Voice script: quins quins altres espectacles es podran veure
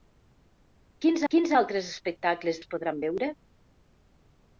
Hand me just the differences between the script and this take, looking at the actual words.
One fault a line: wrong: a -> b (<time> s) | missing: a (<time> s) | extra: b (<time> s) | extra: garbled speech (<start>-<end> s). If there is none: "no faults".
no faults